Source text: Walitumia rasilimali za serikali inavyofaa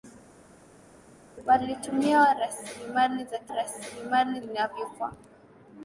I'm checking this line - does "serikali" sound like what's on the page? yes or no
no